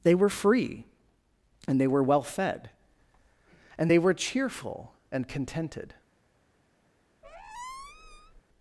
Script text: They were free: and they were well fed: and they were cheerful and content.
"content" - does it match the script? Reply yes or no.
no